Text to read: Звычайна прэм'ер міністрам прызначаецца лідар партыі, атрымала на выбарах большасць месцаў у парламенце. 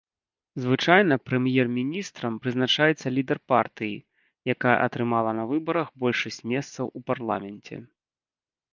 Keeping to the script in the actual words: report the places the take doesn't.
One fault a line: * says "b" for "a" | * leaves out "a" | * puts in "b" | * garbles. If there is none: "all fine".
* puts in "якая"